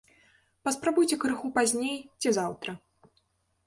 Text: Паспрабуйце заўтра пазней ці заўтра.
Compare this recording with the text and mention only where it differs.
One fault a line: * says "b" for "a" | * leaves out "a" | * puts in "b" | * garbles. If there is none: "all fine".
* says "крыху" for "заўтра"